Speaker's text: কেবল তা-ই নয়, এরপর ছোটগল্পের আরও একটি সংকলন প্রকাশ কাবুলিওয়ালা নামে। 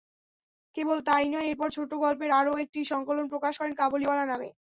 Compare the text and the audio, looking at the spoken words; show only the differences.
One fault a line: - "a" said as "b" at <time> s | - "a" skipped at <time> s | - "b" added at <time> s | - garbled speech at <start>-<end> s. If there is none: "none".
- "করেন" added at 3.6 s